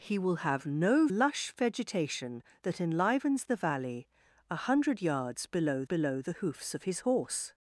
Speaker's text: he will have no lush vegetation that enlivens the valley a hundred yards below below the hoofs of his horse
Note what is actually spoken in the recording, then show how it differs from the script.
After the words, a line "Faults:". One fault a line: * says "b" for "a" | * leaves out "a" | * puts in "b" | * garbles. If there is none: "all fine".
he will have no lush vegetation that enlivens the valley a hundred yards below below the hoofs of his horse
Faults:
all fine